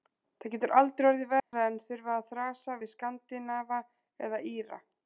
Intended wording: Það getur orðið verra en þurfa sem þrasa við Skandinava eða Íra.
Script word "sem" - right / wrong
wrong